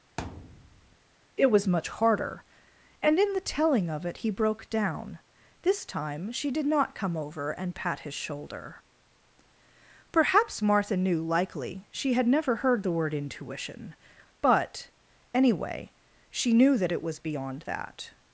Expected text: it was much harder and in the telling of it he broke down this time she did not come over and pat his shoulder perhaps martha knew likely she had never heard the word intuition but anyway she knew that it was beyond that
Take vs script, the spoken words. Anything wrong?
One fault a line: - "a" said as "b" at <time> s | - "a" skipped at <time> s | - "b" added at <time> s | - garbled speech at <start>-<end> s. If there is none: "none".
none